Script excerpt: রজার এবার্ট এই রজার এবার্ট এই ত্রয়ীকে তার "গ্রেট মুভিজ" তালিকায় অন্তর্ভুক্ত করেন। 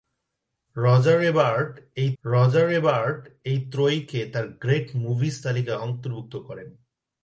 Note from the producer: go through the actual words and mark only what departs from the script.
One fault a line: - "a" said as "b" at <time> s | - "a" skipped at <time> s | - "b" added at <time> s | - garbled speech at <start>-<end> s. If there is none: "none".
none